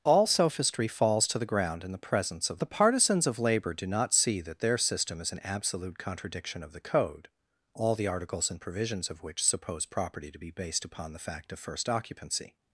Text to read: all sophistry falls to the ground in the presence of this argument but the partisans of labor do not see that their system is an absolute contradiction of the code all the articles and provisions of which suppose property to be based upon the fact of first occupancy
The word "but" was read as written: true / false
false